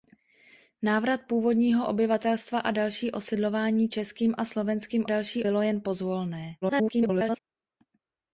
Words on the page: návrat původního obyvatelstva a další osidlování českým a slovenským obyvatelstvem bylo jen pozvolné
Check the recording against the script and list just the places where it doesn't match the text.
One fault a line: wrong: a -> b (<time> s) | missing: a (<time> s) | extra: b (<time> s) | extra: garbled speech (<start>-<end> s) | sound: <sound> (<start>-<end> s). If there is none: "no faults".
wrong: obyvatelstvem -> další (5.0 s)
extra: garbled speech (6.6-7.4 s)